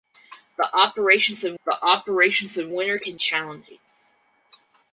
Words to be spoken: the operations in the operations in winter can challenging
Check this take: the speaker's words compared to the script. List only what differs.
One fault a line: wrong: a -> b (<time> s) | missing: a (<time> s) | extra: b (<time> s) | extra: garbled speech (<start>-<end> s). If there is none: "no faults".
no faults